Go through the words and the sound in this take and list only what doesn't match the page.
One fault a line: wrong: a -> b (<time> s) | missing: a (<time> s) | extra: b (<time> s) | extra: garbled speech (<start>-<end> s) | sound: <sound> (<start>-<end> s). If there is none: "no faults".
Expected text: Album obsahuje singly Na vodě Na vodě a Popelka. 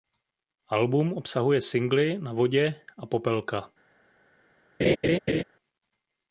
missing: Na vodě (2.8 s)
sound: laugh (4.8-5.4 s)